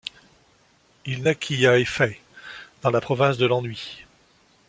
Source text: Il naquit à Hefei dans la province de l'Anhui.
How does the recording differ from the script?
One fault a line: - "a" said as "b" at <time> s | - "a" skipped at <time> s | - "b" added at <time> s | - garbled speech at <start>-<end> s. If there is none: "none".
none